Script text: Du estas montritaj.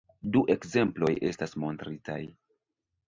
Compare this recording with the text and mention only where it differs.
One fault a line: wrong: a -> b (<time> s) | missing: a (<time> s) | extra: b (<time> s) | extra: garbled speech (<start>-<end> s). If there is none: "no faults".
extra: ekzemploj (0.5 s)